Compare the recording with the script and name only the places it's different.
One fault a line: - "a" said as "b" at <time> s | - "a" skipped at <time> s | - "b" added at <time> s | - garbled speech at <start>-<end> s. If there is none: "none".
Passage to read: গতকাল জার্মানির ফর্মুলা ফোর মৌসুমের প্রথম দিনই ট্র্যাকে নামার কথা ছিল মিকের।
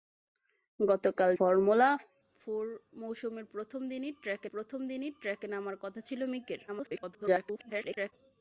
- "জার্মানির" skipped at 1.3 s
- "প্রথম দিনই ট্র্যাকে" added at 4.5 s
- garbled speech at 6.7-8.1 s